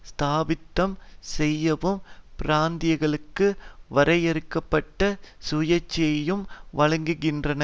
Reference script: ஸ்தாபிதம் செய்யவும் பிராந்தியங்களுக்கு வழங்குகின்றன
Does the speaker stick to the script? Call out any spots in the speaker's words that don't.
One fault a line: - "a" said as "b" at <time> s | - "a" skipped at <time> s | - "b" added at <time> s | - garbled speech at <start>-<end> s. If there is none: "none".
- "வரையறுக்க பட்ட சுயாட்சியையும்" added at 3.9 s